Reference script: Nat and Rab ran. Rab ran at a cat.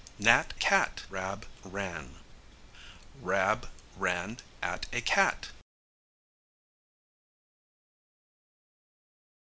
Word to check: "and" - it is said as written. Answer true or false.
false